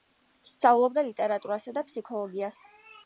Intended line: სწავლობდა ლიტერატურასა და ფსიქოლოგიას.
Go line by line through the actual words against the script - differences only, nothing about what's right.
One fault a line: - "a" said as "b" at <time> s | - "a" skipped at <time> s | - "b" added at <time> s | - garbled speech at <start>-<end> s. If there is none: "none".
none